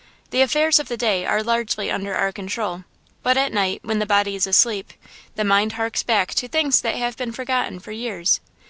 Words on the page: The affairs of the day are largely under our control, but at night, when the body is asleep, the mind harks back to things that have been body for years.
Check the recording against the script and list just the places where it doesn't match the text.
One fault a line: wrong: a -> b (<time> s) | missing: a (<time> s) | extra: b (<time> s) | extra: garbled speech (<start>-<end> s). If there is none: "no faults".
wrong: body -> forgotten (7.3 s)